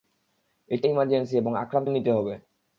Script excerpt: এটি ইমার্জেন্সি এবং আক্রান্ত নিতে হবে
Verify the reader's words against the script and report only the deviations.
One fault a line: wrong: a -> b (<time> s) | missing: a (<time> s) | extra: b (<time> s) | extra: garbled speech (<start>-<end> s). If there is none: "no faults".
no faults